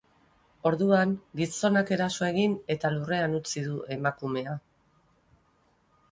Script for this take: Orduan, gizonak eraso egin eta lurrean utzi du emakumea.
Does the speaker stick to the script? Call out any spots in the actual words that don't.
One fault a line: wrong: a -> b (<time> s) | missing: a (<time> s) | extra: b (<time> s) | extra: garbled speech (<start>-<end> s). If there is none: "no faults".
no faults